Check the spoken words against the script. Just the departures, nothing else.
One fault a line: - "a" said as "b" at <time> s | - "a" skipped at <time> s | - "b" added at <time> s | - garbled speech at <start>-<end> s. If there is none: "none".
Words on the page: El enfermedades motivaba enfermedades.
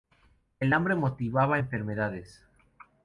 - "enfermedades" said as "hambre" at 0.7 s